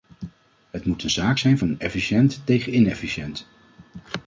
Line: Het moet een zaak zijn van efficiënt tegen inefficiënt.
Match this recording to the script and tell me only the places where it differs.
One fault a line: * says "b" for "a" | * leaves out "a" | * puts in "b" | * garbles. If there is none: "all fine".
all fine